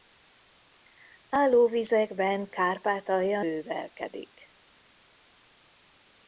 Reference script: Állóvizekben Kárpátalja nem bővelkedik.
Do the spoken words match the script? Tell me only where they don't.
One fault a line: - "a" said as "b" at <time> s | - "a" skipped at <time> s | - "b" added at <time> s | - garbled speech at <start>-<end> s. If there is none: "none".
- "nem" skipped at 3.4 s